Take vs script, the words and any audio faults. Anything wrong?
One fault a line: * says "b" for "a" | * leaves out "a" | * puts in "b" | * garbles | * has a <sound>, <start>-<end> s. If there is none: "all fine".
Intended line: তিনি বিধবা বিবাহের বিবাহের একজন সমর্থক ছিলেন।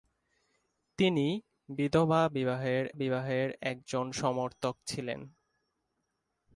all fine